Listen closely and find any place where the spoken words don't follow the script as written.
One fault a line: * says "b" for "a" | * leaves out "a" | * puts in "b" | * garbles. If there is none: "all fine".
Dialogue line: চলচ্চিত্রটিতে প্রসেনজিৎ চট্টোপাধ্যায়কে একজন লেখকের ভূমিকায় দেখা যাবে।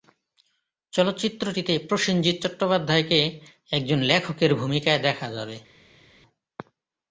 all fine